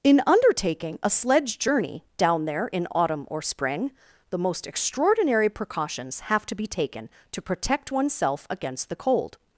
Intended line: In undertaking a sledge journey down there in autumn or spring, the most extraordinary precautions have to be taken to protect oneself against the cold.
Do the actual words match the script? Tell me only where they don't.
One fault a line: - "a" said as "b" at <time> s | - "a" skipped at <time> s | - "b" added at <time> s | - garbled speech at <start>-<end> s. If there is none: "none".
none